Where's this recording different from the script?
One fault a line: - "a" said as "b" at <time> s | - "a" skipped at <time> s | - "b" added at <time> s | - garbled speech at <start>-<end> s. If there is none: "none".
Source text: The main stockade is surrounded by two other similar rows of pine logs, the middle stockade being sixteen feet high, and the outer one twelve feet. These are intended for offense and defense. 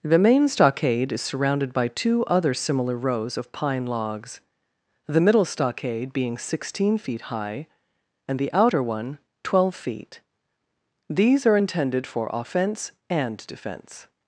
none